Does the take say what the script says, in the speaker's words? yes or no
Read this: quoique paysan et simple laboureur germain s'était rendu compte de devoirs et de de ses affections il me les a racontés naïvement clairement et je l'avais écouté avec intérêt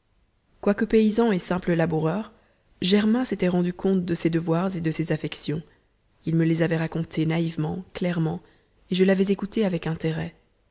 no